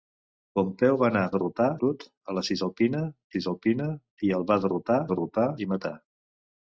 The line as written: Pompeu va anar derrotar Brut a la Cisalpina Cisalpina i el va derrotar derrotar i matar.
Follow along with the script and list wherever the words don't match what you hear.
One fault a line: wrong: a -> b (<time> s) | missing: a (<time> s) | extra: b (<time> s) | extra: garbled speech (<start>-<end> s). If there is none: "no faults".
no faults